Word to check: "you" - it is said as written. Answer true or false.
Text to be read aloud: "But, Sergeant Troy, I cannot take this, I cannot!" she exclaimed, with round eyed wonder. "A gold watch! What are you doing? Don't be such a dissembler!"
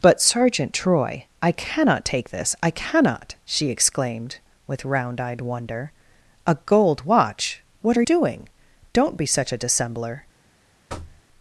false